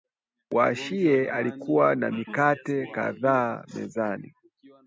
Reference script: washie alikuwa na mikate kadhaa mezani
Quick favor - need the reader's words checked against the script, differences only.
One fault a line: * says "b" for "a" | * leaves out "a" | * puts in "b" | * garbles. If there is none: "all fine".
all fine